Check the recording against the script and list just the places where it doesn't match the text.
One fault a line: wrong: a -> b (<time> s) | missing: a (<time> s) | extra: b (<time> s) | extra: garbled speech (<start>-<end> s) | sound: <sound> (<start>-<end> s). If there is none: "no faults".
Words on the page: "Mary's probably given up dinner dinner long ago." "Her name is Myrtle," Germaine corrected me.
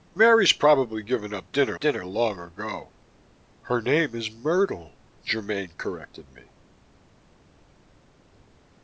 no faults